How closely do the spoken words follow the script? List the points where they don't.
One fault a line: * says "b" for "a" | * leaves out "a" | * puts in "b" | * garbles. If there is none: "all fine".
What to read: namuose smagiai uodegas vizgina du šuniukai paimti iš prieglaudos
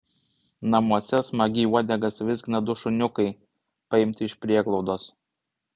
all fine